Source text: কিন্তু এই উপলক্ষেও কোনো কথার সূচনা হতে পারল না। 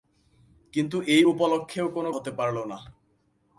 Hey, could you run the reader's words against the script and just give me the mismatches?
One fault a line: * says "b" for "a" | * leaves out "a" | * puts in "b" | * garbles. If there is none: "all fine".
* leaves out "কথার সূচনা"